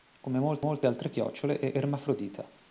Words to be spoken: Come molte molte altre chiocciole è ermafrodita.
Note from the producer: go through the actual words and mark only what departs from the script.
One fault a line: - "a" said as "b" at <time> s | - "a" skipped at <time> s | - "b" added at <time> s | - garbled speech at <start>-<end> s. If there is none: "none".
none